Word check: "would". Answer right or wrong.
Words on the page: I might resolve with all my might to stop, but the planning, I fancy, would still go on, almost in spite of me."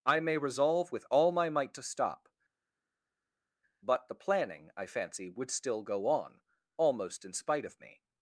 right